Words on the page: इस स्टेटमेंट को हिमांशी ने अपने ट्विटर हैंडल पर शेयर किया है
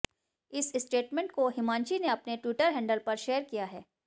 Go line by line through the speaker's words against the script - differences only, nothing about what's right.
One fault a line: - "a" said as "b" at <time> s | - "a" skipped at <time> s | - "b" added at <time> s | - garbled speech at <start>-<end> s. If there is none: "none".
none